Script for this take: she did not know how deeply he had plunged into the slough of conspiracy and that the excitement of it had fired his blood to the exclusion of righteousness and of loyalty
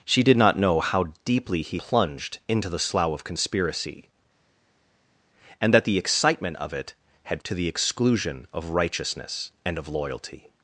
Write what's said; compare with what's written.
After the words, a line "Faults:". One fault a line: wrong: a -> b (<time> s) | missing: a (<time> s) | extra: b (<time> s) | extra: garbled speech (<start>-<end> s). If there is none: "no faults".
she did not know how deeply he plunged into the slough of conspiracy and that the excitement of it had to the exclusion of righteousness and of loyalty
Faults:
missing: had (1.8 s)
missing: fired his blood (7.4 s)